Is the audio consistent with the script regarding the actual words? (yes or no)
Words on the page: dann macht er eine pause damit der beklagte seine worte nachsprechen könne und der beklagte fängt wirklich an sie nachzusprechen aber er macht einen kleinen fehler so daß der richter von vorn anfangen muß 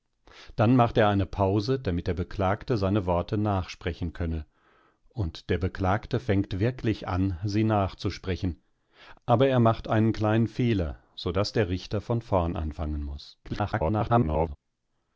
no